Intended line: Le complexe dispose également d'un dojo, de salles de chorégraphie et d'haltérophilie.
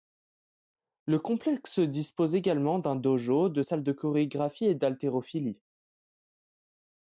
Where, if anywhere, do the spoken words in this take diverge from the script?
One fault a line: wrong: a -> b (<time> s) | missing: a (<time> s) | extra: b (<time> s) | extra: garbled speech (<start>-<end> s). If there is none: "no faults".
no faults